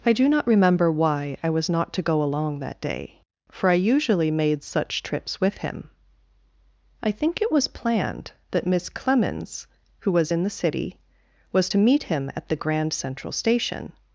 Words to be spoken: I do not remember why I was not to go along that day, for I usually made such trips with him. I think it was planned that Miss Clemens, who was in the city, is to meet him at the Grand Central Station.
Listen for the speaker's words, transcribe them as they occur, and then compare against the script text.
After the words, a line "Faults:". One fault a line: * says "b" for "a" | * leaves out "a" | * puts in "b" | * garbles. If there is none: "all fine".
I do not remember why I was not to go along that day, for I usually made such trips with him. I think it was planned that Miss Clemens, who was in the city, was to meet him at the Grand Central Station.
Faults:
* says "was" for "is"